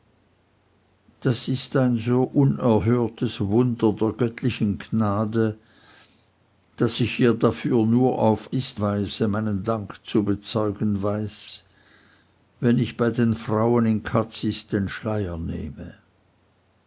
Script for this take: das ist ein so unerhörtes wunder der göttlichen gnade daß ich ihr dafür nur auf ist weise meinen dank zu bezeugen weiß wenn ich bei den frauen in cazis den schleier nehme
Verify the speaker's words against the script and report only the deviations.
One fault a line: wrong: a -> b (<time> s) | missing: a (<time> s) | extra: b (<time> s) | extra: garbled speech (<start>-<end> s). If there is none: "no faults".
no faults